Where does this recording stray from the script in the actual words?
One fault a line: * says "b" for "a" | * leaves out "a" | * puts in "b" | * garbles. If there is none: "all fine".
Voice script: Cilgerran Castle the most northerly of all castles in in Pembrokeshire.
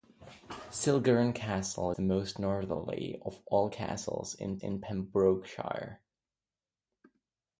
all fine